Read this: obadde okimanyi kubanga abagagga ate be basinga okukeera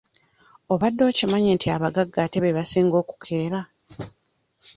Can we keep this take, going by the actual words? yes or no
no